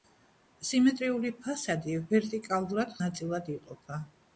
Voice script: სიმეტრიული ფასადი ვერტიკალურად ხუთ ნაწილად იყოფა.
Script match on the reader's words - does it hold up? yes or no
no